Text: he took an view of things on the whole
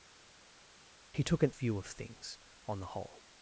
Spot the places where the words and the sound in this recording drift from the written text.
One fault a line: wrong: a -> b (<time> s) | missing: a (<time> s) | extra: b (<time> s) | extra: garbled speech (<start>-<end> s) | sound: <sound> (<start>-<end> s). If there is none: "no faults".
no faults